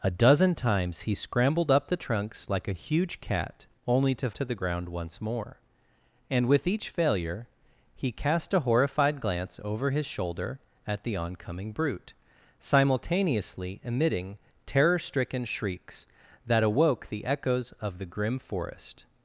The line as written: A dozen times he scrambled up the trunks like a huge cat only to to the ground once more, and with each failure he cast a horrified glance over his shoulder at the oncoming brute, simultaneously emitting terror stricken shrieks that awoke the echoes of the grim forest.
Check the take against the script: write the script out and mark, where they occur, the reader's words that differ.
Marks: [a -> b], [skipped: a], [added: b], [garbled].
A dozen times he scrambled up the trunks like a huge cat only to to the ground once more, and with each failure he cast a horrified glance over his shoulder at the oncoming brute, simultaneously emitting terror stricken shrieks that awoke the echoes of the grim forest.